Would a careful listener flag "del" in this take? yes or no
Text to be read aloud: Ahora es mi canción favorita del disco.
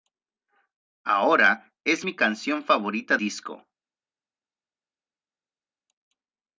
yes